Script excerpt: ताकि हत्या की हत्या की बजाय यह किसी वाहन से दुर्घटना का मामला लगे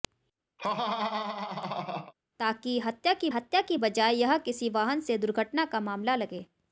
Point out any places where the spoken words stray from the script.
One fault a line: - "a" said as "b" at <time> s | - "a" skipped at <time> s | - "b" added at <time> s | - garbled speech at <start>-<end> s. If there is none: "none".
none